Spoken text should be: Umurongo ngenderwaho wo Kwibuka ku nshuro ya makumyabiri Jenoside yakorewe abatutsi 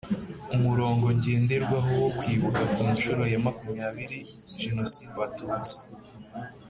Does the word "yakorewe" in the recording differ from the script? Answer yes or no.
yes